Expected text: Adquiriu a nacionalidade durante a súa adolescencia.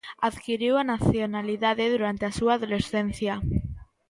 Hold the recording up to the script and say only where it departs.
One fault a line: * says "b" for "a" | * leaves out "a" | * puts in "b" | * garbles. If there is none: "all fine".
all fine